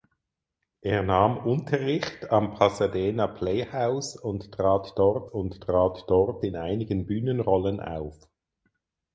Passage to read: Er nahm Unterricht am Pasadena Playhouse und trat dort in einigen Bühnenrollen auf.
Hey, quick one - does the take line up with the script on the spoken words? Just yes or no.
no